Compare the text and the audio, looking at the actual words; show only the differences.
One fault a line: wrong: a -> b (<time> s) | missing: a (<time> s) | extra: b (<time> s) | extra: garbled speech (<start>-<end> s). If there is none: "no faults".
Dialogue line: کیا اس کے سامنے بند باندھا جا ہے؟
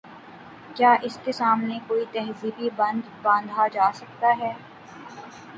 extra: کوئی تہذیبی (1.9 s)
extra: سکتا (3.9 s)